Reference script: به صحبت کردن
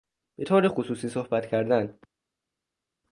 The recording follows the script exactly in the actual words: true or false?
false